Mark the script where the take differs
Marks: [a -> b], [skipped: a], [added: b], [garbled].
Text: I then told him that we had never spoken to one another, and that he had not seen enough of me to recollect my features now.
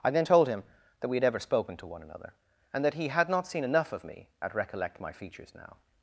I then told him that we had [never -> ever] spoken to one another, and that he had not seen enough of me [to -> at] recollect my features now.